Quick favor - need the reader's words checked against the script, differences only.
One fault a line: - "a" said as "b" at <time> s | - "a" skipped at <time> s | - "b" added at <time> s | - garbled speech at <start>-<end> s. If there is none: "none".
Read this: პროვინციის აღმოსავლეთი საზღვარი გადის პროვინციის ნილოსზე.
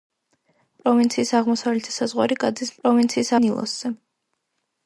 none